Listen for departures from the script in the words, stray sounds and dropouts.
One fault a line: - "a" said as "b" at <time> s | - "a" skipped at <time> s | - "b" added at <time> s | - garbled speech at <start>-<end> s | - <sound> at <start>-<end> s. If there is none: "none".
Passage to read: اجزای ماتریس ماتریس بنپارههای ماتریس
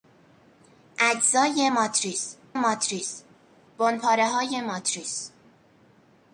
none